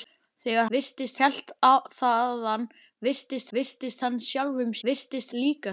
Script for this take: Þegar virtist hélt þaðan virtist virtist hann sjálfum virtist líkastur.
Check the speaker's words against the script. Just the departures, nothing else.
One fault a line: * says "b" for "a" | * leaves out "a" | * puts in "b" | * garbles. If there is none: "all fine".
all fine